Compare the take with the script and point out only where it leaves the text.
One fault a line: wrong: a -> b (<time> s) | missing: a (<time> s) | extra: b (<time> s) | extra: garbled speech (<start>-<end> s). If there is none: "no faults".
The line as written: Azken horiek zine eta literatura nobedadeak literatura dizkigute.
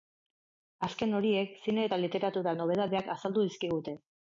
wrong: literatura -> azaldu (3.2 s)